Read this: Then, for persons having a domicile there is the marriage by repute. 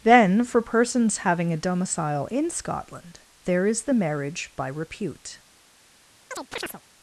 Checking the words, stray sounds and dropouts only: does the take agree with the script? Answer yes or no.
no